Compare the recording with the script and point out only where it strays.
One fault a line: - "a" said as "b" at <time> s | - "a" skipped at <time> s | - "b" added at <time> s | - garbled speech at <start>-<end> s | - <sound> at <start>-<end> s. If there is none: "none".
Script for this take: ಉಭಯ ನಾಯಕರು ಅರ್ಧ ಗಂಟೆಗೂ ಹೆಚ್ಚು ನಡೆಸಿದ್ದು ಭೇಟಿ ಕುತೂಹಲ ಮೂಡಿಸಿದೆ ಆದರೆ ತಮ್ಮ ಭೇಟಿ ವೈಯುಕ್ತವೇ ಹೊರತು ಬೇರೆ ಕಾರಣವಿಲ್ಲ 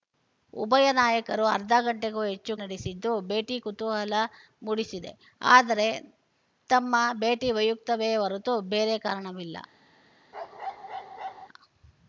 - bark at 10.3-11.5 s